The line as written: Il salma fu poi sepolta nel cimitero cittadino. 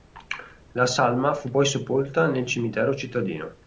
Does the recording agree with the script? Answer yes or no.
no